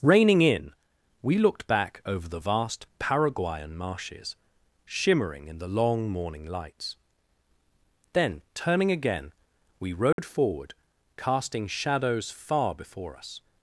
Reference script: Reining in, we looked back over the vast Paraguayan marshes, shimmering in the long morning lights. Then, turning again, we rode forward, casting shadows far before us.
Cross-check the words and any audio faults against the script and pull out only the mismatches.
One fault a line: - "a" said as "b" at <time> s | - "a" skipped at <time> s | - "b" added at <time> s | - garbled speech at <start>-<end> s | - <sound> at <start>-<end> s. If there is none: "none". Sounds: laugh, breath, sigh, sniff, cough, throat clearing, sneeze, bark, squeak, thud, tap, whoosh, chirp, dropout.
- dropout at 10.1-10.2 s